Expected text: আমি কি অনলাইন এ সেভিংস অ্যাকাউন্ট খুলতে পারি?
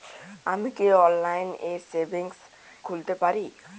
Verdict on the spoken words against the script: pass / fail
fail